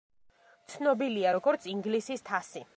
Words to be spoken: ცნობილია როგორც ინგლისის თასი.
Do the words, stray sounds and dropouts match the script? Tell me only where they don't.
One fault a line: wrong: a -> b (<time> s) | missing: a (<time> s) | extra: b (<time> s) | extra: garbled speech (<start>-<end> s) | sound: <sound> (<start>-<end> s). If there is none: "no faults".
no faults